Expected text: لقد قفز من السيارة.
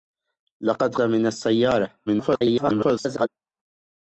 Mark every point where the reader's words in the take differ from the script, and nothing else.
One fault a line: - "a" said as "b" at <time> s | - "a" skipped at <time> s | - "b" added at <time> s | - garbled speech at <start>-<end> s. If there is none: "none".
- "قفز" skipped at 0.9 s
- garbled speech at 2.1-3.3 s